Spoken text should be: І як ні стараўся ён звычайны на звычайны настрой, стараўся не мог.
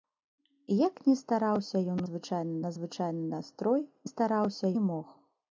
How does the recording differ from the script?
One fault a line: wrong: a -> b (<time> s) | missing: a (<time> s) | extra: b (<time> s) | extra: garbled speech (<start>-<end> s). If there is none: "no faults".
no faults